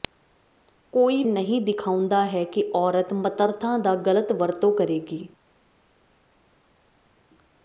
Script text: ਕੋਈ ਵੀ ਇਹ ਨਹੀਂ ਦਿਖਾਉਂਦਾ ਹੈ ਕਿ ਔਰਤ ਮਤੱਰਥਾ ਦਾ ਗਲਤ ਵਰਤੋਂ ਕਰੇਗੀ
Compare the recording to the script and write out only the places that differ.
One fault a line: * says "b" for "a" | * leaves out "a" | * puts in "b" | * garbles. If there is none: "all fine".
* leaves out "ਵੀ ਇਹ"